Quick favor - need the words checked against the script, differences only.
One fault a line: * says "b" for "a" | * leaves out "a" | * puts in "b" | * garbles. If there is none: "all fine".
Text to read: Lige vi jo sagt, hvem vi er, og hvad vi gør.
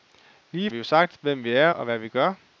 all fine